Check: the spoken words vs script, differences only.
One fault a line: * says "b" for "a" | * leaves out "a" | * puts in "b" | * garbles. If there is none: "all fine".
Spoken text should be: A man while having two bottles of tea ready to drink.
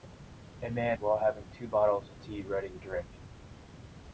all fine